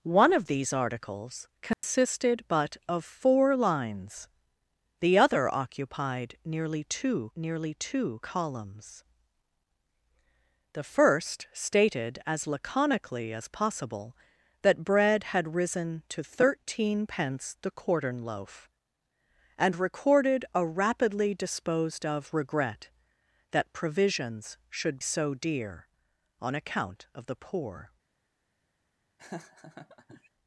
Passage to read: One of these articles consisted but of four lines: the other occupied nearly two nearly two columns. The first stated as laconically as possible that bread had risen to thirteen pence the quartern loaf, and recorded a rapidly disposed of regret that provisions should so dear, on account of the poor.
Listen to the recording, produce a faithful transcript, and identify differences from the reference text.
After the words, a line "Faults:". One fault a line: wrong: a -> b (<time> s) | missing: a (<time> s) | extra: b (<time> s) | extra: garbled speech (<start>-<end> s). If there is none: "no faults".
One of these articles consisted but of four lines: the other occupied nearly two nearly two columns. The first stated as laconically as possible that bread had risen to thirteen pence the quartern loaf, and recorded a rapidly disposed of regret that provisions should so dear, on account of the poor.
Faults:
no faults